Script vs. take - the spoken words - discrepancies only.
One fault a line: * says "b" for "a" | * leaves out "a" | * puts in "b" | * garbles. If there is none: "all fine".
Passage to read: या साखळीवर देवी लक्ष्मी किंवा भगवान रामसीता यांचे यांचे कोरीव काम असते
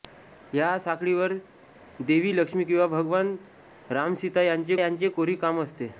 all fine